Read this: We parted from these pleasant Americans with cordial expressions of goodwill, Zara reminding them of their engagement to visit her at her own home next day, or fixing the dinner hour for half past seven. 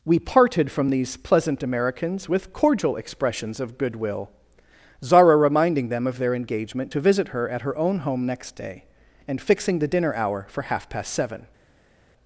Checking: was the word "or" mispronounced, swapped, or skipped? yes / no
yes